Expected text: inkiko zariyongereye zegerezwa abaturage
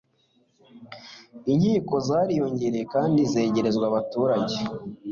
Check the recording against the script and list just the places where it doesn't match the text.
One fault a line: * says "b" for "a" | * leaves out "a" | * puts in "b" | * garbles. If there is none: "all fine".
* puts in "kandi"